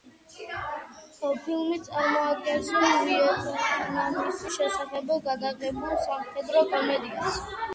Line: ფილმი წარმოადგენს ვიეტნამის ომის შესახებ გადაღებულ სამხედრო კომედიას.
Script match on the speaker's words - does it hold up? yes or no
no